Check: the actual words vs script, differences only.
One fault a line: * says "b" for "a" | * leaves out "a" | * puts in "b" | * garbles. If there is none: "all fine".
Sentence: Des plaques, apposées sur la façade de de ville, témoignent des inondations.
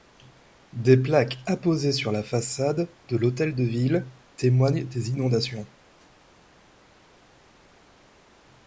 * puts in "l'hôtel"